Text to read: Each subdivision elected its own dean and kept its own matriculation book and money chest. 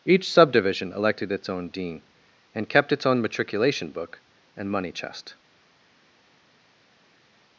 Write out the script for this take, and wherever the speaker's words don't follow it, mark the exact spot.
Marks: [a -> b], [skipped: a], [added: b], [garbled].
Each subdivision elected its own dean and kept its own matriculation book and money chest.